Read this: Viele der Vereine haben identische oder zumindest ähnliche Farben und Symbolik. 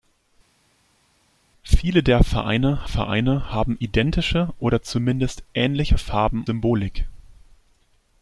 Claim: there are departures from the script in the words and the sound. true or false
true